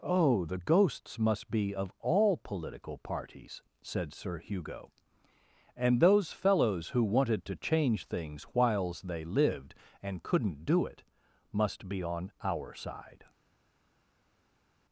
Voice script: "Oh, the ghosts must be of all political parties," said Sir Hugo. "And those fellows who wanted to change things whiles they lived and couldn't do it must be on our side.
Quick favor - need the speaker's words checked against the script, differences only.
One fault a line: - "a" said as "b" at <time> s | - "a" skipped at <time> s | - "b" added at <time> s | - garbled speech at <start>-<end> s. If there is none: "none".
none